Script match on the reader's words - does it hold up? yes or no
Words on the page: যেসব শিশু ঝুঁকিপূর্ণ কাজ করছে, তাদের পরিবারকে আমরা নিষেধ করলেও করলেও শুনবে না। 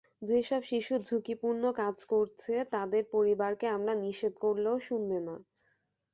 no